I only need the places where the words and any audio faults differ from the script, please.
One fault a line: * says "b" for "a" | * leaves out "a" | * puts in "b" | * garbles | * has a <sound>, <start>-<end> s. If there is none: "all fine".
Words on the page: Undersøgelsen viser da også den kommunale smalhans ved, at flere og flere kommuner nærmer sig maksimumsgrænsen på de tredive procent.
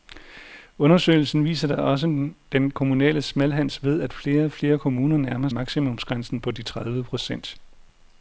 * leaves out "sig"